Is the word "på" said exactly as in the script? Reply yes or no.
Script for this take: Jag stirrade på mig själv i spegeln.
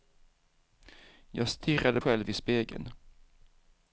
no